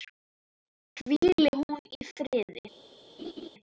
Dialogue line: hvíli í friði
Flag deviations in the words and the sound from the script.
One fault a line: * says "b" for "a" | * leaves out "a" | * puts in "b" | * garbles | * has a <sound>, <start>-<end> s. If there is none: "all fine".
* puts in "hún"
* has a laugh, 3.2-3.5 s